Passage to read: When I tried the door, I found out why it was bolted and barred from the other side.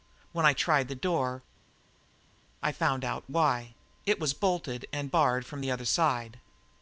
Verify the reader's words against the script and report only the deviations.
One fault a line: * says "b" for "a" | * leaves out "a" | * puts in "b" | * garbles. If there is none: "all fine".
all fine